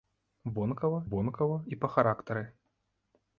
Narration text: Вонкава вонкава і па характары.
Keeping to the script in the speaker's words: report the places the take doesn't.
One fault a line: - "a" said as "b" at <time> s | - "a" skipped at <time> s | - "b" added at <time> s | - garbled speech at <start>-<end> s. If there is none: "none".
none